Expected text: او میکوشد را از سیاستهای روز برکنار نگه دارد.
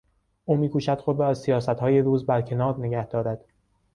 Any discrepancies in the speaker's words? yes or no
yes